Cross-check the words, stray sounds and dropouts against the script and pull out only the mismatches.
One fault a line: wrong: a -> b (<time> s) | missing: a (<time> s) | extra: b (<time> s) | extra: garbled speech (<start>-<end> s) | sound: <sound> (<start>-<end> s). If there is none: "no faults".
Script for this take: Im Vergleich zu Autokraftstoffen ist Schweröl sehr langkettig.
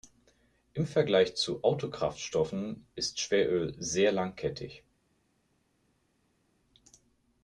no faults